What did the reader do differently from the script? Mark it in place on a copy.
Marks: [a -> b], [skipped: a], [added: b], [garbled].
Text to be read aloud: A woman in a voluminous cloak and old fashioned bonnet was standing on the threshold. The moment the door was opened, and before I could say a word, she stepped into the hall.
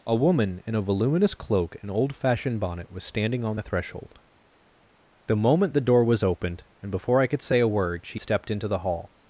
A woman in a voluminous cloak and old fashioned bonnet was standing on the threshold. The moment the door was opened, and before I could say a word, she stepped into the hall.